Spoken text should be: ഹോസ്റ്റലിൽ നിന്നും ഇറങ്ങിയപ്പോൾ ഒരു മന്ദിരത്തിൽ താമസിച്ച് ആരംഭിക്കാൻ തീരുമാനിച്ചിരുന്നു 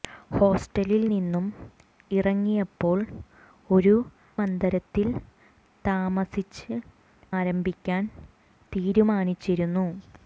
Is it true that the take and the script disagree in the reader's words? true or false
false